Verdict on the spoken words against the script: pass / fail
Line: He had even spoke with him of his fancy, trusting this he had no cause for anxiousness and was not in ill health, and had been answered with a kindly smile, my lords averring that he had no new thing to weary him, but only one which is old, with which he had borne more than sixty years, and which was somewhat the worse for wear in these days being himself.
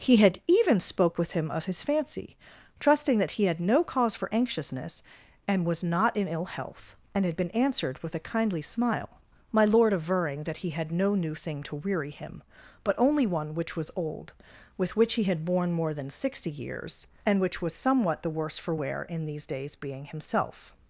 fail